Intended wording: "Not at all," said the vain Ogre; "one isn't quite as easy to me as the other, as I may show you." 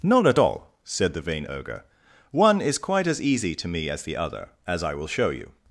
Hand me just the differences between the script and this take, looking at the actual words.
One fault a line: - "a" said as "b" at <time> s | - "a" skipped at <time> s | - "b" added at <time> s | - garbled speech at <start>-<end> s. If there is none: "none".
- "isn't" said as "is" at 2.6 s
- "may" said as "will" at 4.9 s